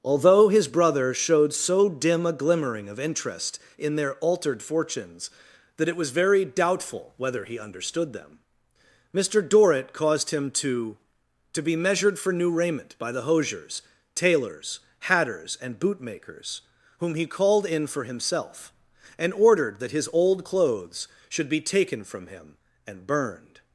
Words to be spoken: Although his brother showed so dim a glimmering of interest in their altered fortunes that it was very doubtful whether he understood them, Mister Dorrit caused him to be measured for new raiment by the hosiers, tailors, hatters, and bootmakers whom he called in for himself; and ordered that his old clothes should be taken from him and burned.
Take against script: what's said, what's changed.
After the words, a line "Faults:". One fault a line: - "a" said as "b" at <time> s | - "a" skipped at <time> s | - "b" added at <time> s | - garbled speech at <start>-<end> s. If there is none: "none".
Although his brother showed so dim a glimmering of interest in their altered fortunes that it was very doubtful whether he understood them, Mister Dorrit caused him to to be measured for new raiment by the hosiers, tailors, hatters, and bootmakers whom he called in for himself; and ordered that his old clothes should be taken from him and burned.
Faults:
- "to" added at 11.5 s